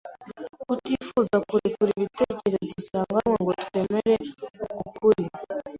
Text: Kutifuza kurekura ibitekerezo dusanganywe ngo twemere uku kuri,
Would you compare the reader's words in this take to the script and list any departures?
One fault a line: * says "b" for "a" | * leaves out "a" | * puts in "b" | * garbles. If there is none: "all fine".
all fine